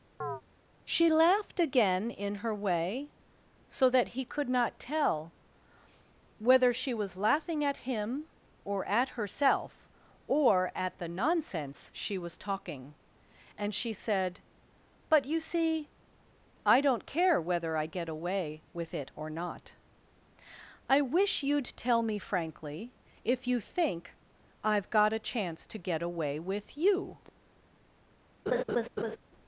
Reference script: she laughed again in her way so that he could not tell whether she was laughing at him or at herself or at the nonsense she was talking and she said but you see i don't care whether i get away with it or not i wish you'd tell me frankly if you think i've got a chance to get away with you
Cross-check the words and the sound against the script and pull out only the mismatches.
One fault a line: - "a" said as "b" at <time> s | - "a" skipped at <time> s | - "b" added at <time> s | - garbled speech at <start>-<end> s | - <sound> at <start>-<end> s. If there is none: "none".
- chirp at 0.2-0.4 s
- laugh at 28.5-29.2 s